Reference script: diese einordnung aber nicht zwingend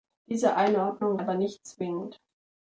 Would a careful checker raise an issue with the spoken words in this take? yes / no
no